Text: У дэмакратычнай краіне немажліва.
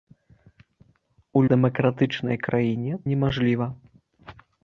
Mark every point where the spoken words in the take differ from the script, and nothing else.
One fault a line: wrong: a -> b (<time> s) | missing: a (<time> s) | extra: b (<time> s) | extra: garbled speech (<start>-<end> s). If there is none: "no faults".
no faults